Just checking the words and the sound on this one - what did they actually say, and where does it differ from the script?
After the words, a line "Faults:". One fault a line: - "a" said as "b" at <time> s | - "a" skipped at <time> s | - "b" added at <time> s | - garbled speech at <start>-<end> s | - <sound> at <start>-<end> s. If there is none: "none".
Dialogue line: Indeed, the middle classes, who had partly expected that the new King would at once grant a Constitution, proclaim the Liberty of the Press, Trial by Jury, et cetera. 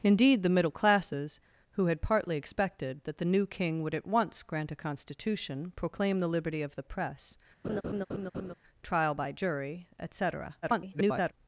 Indeed, the middle classes, who had partly expected that the new King would at once grant a Constitution, proclaim the Liberty of the Press, Trial by Jury, et cetera. [garbled]
Faults:
- laugh at 7.6-8.5 s
- garbled speech at 10.6-11.3 s